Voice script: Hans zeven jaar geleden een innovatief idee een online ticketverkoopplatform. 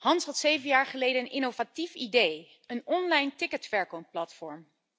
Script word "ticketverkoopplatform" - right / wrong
right